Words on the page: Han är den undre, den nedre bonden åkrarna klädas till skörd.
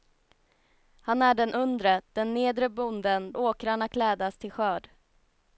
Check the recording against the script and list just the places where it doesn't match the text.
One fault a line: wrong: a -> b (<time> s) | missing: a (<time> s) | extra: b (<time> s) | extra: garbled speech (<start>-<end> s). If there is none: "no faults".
no faults